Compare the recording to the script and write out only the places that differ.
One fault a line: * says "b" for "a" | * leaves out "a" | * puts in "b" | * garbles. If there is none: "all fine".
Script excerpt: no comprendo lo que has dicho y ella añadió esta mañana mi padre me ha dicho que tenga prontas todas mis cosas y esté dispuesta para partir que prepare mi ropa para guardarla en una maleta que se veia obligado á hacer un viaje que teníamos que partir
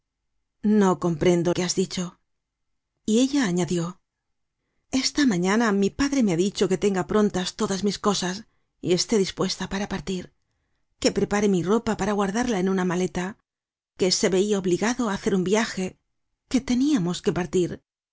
* leaves out "lo"